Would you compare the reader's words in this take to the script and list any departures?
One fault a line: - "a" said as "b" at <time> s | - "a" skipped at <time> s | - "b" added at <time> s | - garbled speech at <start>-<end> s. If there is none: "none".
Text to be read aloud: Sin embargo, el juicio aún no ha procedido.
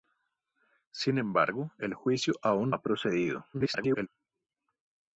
- "no" skipped at 2.8 s
- garbled speech at 3.5-4.1 s